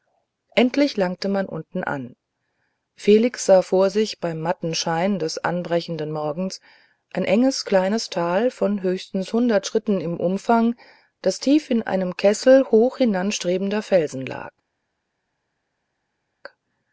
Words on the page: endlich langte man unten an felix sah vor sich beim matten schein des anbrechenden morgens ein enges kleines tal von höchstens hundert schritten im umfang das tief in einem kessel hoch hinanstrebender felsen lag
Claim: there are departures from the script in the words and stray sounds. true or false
false